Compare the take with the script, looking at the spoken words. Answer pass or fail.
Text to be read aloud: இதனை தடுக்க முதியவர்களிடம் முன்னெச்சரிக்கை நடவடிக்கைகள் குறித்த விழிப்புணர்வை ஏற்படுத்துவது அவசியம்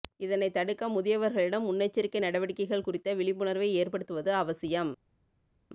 pass